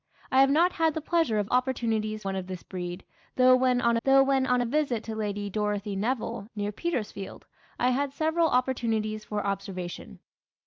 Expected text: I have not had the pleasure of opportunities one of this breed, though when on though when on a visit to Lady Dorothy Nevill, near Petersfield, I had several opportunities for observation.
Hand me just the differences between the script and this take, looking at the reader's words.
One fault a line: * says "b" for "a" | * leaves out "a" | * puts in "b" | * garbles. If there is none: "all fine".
all fine